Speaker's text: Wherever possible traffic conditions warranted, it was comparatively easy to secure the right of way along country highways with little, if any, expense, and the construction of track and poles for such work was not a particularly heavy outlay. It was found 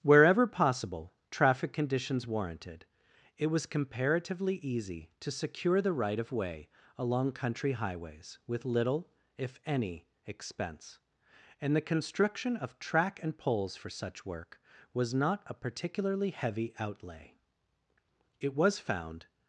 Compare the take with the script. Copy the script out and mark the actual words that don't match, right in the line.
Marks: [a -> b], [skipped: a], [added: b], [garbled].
Wherever possible traffic conditions warranted, it was comparatively easy to secure the right of way along country highways with little, if any, expense, and the construction of track and poles for such work was not a particularly heavy outlay. It was found